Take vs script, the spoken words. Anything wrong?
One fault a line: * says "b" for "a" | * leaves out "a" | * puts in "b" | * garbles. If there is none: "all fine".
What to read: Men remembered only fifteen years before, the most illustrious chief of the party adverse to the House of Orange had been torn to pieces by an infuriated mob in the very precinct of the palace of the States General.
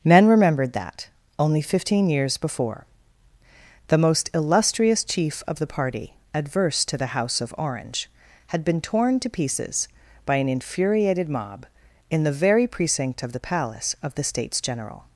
* puts in "that"